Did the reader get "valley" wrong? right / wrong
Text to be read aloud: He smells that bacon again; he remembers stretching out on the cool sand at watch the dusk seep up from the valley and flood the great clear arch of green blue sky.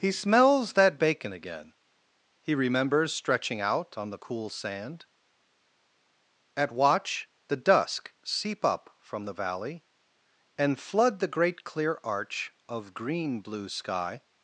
right